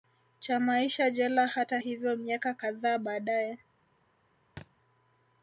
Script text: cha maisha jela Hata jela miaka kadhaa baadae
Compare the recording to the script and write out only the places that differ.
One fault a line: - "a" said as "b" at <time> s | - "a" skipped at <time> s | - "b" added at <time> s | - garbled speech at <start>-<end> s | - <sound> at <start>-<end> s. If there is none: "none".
- "jela" said as "hivyo" at 1.7 s
- thud at 4.6-4.7 s